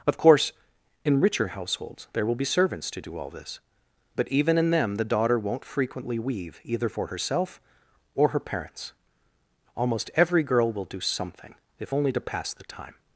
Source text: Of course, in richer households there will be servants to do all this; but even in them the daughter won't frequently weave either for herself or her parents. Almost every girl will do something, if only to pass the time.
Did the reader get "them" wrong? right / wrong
right